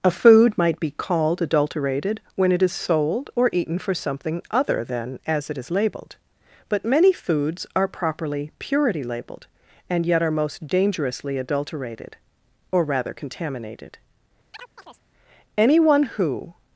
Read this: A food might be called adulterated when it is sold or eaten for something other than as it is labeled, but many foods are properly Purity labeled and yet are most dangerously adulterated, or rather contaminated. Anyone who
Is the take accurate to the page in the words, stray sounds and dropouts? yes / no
no